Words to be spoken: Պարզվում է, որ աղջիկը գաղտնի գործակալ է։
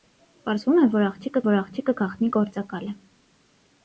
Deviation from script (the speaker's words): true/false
true